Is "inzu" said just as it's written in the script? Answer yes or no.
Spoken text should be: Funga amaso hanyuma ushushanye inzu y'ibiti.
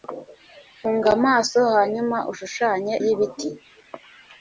no